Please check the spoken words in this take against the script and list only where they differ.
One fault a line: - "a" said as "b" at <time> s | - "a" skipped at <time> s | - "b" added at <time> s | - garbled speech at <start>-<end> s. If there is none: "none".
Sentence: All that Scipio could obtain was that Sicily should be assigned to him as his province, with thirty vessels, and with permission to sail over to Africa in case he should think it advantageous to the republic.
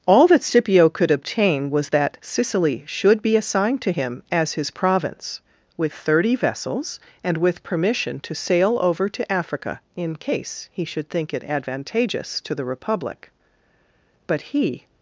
- "But he" added at 14.3 s